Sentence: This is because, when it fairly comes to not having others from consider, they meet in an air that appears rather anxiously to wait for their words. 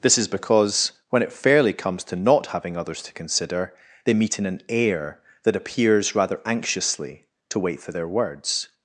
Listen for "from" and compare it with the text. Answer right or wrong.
wrong